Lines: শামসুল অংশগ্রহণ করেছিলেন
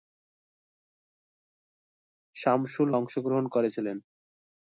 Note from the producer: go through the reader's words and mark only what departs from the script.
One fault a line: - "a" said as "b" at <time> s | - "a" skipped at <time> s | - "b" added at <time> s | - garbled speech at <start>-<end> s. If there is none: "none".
none